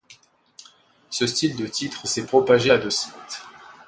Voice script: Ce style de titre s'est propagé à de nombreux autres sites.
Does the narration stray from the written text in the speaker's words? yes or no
yes